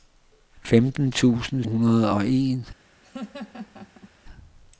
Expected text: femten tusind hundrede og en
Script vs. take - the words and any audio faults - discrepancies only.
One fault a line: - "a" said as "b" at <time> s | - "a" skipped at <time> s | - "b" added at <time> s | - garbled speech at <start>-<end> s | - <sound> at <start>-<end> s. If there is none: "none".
- laugh at 3.0-4.1 s